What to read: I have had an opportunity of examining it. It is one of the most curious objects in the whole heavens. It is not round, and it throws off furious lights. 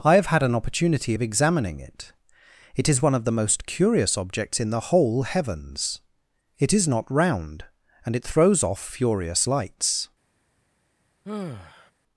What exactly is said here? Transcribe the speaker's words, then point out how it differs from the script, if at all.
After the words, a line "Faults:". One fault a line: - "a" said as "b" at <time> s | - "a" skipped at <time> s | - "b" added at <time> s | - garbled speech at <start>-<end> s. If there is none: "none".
I have had an opportunity of examining it. It is one of the most curious objects in the whole heavens. It is not round, and it throws off furious lights.
Faults:
none